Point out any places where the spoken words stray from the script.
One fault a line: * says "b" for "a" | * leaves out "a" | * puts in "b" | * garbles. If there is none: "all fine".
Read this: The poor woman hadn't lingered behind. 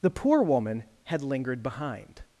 * says "had" for "hadn't"